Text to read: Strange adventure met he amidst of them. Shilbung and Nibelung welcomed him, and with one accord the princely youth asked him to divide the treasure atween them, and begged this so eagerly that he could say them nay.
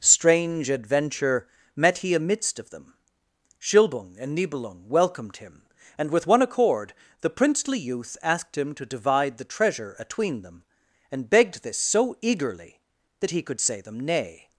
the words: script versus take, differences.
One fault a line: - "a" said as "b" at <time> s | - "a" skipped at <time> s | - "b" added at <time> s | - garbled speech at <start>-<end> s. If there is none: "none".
none